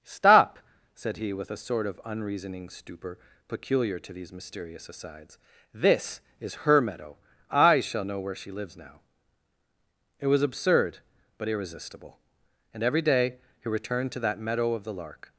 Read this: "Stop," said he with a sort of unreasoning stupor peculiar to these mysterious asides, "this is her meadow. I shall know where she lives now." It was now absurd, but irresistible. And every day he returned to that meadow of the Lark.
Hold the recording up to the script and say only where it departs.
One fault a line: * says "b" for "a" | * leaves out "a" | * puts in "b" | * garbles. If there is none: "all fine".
* leaves out "now"